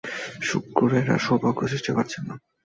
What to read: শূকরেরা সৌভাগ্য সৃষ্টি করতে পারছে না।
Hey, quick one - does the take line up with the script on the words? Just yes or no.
no